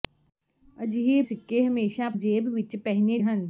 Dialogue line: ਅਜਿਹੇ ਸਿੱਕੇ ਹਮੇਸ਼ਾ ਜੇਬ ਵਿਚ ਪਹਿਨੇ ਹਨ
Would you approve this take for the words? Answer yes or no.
yes